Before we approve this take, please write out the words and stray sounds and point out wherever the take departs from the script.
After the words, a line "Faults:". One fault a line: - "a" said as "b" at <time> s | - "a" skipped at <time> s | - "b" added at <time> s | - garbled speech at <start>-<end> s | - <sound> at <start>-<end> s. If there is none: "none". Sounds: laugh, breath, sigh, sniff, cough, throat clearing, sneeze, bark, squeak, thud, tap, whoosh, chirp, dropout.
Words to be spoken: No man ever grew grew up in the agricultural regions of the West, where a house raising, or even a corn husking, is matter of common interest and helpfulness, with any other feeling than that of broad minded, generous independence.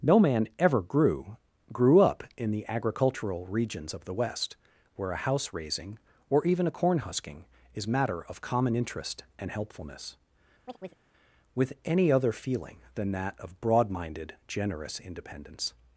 No man ever grew grew up in the agricultural regions of the West, where a house raising, or even a corn husking, is matter of common interest and helpfulness, with any other feeling than that of broad minded, generous independence.
Faults:
- chirp at 10.6-11.1 s